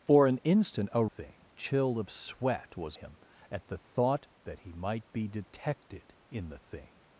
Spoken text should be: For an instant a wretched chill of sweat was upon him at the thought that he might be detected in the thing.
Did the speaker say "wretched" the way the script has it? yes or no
no